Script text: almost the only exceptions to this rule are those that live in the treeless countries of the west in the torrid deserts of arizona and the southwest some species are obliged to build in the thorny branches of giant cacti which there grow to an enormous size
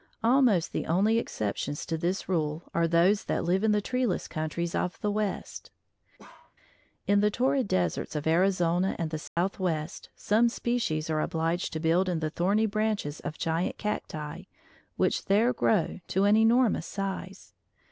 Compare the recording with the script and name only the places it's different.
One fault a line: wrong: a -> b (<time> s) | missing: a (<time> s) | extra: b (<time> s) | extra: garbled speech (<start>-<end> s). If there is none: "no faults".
no faults